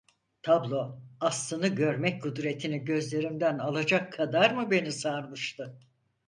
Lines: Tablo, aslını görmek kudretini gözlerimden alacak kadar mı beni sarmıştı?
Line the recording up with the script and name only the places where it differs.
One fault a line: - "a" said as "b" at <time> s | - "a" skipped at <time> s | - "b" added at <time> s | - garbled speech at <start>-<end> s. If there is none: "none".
none